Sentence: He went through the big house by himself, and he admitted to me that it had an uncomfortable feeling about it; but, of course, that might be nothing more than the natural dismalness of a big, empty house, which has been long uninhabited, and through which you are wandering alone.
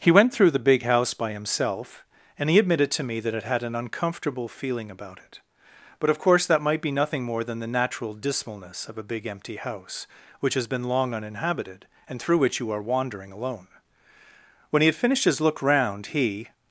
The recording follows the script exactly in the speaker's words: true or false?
false